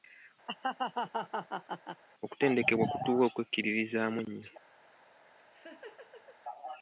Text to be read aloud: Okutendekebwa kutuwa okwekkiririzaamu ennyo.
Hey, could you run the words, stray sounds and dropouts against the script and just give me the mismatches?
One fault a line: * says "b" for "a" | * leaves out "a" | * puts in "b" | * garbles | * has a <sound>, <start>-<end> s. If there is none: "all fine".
* has a laugh, 0.5-2.0 s
* has a laugh, 5.4-6.4 s